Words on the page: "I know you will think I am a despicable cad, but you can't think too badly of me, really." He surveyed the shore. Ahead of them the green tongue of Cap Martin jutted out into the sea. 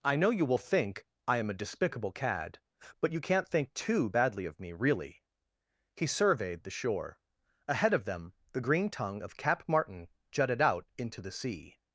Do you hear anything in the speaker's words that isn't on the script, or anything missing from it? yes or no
no